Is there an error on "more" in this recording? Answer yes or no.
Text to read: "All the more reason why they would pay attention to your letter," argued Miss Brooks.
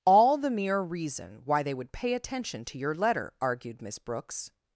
yes